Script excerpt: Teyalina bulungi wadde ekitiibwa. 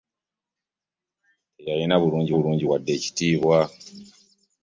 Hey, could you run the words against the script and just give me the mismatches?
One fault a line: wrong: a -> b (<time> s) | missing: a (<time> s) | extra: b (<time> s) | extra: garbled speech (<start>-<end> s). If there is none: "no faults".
extra: bulungi (2.3 s)